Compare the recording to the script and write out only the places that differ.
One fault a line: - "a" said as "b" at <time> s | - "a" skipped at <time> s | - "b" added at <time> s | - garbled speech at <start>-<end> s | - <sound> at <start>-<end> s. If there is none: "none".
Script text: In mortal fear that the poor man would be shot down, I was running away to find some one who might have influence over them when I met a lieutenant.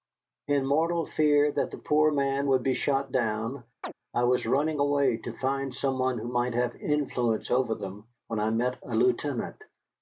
- chirp at 3.8-3.9 s